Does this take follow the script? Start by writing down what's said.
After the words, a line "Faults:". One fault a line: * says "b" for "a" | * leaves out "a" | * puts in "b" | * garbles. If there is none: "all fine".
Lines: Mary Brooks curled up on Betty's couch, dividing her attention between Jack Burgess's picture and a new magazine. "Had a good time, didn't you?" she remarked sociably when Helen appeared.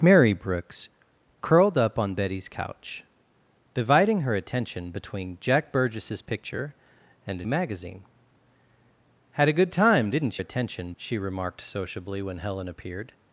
Mary Brooks curled up on Betty's couch, dividing her attention between Jack Burgess's picture and a magazine. "Had a good time, didn't attention?" she remarked sociably when Helen appeared.
Faults:
* leaves out "new"
* says "attention" for "you"